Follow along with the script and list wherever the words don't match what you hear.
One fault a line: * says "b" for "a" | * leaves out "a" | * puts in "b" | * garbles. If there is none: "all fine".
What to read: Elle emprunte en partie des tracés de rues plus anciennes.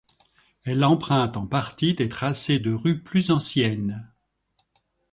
all fine